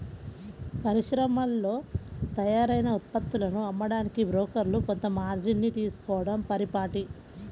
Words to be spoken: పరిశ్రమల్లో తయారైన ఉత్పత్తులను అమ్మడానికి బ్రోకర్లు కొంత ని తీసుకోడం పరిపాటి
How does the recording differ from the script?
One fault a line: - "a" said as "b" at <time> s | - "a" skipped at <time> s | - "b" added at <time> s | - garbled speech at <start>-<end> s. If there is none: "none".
- "మార్జిన్" added at 5.2 s